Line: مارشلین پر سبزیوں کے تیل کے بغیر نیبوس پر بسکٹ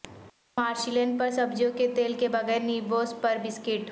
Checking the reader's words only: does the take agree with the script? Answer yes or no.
yes